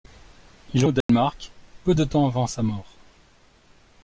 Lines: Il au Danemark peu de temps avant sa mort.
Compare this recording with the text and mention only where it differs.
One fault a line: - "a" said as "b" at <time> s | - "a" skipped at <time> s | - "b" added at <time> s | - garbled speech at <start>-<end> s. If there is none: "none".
none